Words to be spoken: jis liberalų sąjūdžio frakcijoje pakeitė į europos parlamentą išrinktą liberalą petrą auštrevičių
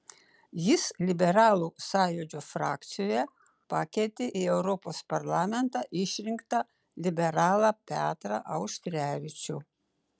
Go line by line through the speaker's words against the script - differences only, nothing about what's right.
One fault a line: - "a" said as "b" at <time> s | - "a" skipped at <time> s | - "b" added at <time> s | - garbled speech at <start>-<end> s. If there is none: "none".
none